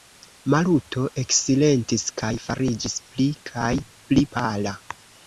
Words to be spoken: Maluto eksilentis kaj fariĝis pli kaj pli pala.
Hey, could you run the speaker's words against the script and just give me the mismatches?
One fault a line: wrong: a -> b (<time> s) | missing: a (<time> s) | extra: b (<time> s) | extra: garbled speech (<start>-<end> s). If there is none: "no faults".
no faults